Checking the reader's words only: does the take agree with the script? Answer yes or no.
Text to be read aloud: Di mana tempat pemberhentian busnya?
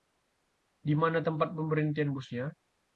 yes